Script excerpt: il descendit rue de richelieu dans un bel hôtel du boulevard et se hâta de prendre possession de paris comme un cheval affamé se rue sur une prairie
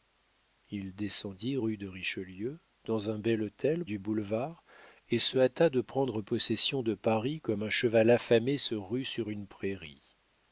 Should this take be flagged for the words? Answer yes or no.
no